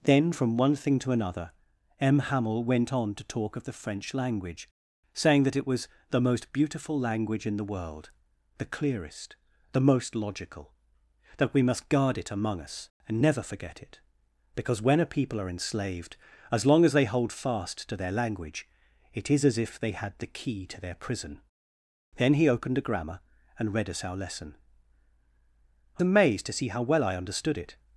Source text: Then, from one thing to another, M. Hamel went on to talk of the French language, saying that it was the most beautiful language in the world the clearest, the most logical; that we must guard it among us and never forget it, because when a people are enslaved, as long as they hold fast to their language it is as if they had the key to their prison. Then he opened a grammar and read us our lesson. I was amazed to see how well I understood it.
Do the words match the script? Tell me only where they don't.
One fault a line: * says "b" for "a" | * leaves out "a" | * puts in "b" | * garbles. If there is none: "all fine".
* leaves out "was"